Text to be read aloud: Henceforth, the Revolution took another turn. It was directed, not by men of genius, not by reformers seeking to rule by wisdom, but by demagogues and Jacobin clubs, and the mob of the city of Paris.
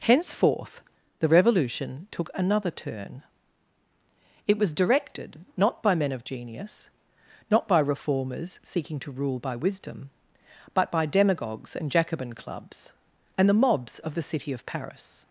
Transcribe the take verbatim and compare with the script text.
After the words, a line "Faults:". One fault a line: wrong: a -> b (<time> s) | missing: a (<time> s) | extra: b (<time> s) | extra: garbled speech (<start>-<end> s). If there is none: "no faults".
Henceforth, the Revolution took another turn. It was directed, not by men of genius, not by reformers seeking to rule by wisdom, but by demagogues and Jacobin clubs, and the mobs of the city of Paris.
Faults:
wrong: mob -> mobs (13.5 s)